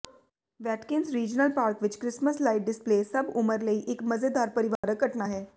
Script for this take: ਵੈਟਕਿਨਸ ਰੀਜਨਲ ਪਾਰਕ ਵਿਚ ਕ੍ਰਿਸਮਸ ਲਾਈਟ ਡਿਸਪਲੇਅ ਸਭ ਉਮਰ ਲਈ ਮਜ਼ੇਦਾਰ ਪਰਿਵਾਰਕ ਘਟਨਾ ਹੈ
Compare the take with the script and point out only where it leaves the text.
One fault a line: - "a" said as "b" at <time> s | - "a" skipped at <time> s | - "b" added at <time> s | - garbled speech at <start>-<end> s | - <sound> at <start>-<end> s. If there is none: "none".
- "ਇਕ" added at 3.9 s
- dropout at 4.8-4.8 s